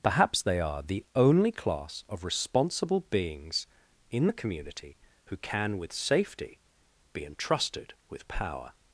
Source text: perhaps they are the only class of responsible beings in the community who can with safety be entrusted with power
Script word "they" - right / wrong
right